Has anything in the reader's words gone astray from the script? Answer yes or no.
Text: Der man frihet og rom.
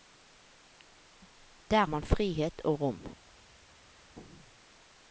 no